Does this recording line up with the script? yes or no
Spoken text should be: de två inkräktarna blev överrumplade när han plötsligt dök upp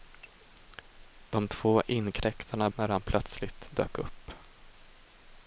no